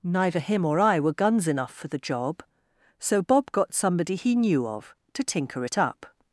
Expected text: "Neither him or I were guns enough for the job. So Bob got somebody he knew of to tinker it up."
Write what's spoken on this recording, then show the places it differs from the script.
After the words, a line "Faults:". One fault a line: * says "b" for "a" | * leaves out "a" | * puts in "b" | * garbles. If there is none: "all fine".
"Neither him or I were guns enough for the job. So Bob got somebody he knew of to tinker it up."
Faults:
all fine